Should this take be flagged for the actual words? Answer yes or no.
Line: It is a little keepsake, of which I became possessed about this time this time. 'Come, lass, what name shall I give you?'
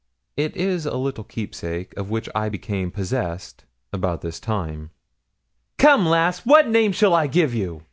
yes